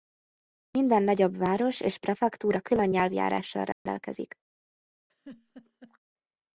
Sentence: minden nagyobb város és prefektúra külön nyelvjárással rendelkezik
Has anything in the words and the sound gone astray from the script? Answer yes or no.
yes